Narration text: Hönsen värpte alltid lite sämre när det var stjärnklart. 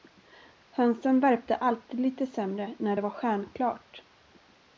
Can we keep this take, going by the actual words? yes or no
yes